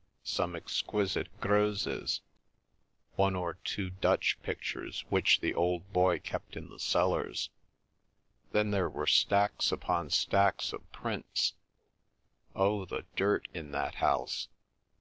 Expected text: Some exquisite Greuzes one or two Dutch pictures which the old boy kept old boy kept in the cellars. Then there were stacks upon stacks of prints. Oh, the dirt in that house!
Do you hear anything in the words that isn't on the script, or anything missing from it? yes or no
yes